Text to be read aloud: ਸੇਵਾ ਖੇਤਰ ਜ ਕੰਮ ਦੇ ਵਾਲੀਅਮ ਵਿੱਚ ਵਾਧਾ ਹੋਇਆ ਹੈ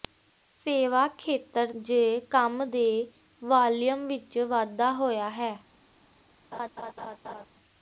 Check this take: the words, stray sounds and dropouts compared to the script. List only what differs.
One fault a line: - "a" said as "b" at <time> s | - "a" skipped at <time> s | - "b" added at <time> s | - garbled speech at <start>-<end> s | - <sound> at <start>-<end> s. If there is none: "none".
- laugh at 6.5-7.5 s